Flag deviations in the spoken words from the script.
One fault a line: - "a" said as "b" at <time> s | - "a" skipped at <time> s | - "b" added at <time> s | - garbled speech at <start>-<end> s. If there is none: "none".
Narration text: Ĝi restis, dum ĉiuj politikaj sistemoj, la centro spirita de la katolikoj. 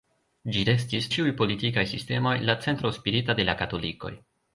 - "dum" skipped at 1.1 s